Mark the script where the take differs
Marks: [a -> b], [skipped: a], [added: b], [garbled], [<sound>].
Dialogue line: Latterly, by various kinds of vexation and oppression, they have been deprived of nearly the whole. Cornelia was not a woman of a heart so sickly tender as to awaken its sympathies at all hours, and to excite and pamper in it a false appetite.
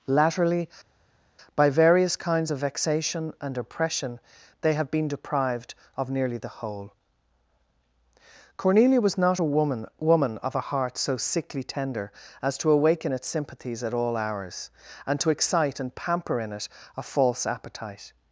Latterly, by various kinds of vexation and oppression, they have been deprived of nearly the whole. Cornelia was not a woman [added: woman] of a heart so sickly tender as to awaken its sympathies at all hours, and to excite and pamper in it a false appetite.